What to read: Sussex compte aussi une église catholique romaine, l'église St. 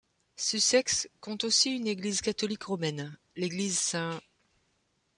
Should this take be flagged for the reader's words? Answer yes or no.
no